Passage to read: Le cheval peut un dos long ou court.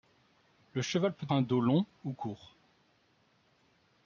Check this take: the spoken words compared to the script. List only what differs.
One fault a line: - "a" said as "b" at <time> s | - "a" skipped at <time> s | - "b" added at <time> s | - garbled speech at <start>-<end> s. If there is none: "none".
none